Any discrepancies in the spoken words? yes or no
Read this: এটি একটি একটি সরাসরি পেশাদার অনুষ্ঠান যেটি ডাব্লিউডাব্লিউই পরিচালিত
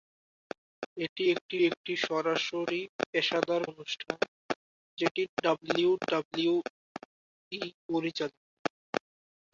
no